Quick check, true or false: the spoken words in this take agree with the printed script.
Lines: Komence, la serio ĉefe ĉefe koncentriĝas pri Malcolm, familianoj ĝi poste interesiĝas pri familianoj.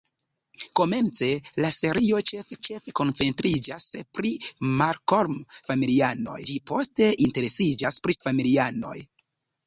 true